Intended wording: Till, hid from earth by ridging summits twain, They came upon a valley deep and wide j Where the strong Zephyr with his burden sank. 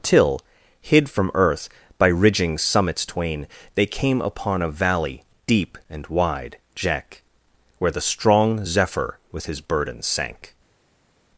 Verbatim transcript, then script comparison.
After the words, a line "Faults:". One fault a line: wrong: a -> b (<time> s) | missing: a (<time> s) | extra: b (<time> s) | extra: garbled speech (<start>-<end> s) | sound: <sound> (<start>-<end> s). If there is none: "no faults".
Till, hid from earth by ridging summits twain, They came upon a valley deep and wide jack Where the strong Zephyr with his burden sank.
Faults:
wrong: j -> jack (6.8 s)